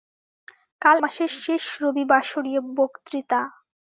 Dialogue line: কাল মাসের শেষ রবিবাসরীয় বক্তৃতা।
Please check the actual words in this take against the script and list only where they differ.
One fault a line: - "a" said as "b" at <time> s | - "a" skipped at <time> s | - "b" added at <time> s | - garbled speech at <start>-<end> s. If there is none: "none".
none